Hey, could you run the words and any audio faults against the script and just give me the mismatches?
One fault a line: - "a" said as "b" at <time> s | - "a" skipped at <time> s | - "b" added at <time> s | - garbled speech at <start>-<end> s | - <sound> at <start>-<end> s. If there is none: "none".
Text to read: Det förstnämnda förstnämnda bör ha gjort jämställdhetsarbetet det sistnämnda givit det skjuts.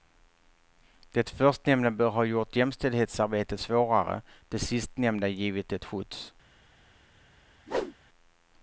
- "förstnämnda" skipped at 1.9 s
- "svårare" added at 3.6 s
- whoosh at 7.7-8.0 s